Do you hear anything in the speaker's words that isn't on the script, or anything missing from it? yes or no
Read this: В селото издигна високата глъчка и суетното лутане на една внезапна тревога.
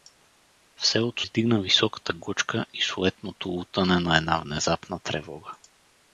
no